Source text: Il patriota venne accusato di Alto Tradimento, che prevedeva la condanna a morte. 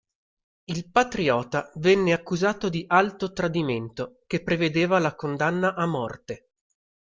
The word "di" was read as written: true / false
true